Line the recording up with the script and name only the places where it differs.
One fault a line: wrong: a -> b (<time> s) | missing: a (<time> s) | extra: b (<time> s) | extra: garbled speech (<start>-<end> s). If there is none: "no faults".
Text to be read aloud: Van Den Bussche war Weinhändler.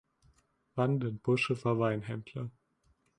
no faults